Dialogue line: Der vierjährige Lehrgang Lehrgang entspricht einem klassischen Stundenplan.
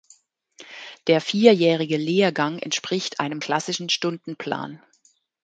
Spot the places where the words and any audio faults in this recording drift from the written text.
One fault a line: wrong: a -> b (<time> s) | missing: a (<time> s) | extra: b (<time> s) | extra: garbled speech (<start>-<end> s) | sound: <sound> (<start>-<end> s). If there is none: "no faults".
missing: Lehrgang (2.6 s)